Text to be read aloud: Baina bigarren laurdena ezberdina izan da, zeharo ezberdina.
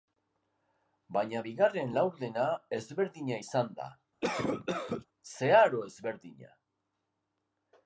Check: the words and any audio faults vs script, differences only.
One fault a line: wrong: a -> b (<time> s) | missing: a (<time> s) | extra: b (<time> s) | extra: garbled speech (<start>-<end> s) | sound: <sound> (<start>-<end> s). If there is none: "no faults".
sound: cough (4.2-5.1 s)